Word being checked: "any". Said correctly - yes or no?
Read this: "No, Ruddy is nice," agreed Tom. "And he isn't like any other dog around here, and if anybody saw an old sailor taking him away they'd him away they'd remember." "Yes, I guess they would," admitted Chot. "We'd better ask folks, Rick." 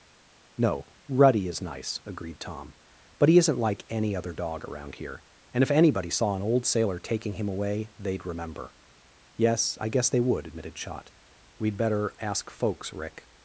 yes